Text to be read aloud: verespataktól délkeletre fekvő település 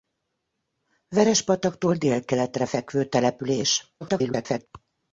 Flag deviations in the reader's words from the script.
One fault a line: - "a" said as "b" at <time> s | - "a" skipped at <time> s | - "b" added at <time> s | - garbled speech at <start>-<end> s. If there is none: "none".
- garbled speech at 4.0-4.7 s